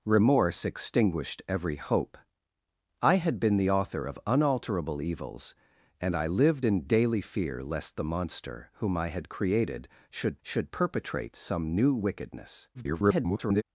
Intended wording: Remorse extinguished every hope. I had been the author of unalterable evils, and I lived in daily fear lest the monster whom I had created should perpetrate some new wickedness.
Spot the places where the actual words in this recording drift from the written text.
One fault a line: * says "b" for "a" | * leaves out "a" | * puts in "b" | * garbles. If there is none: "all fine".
* puts in "should"
* garbles